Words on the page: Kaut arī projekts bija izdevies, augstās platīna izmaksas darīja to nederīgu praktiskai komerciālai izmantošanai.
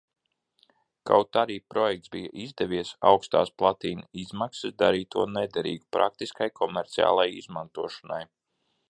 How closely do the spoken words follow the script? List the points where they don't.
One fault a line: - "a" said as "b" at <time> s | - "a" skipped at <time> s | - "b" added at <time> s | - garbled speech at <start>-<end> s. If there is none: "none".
none